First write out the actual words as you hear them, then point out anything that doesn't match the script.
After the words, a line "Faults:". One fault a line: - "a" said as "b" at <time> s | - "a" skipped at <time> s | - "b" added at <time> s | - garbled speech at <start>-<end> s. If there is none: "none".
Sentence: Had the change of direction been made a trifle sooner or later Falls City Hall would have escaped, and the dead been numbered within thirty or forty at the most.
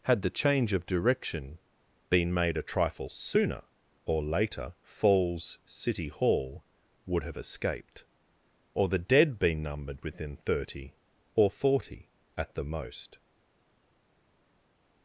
Had the change of direction been made a trifle sooner or later Falls City Hall would have escaped, or the dead been numbered within thirty or forty at the most.
Faults:
- "and" said as "or" at 8.7 s